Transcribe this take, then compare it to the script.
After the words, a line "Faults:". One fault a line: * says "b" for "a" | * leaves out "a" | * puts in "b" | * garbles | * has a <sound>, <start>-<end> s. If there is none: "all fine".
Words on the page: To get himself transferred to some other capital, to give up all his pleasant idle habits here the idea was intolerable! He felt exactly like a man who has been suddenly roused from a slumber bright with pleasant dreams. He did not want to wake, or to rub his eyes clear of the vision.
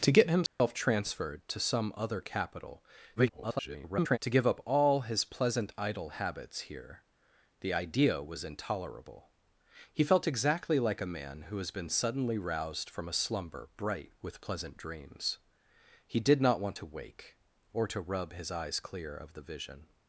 To get himself transferred to some other capital, [garbled] to give up all his pleasant idle habits here the idea was intolerable! He felt exactly like a man who has been suddenly roused from a slumber bright with pleasant dreams. He did not want to wake, or to rub his eyes clear of the vision.
Faults:
* has a dropout, 0.5-0.6 s
* garbles